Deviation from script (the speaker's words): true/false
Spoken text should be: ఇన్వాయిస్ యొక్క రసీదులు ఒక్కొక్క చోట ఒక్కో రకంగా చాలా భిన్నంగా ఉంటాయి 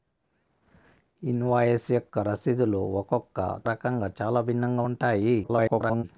true